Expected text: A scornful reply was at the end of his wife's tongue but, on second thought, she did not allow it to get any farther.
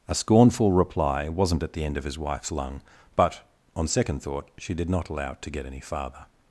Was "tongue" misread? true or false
true